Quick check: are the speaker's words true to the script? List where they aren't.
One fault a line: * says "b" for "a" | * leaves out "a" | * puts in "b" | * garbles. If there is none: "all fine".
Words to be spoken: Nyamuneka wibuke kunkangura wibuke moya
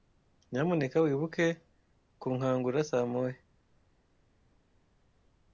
* says "saa" for "wibuke"